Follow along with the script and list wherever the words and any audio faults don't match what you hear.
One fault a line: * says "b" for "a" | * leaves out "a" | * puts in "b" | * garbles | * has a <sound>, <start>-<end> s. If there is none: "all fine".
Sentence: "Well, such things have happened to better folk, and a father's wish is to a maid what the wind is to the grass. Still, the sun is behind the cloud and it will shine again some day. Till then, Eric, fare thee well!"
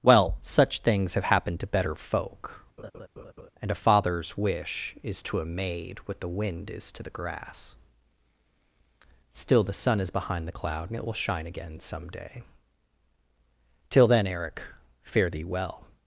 * has a laugh, 2.8-3.5 s